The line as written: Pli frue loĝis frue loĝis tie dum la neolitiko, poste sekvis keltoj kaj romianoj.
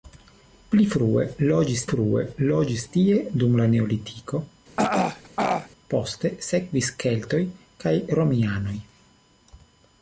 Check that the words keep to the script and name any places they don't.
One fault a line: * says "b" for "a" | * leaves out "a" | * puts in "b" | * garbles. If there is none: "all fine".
all fine